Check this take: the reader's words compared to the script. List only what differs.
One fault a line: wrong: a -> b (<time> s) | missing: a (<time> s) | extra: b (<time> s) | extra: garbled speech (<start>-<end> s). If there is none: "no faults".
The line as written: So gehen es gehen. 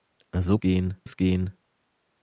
no faults